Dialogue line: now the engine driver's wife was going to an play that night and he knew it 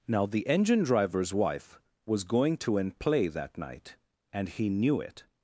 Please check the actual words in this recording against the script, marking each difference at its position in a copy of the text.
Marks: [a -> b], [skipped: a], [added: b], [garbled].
now the engine driver's wife was going to an play that night and he knew it